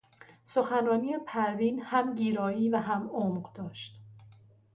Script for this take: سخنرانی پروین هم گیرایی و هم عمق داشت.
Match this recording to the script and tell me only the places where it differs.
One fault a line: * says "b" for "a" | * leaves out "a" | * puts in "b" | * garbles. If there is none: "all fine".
all fine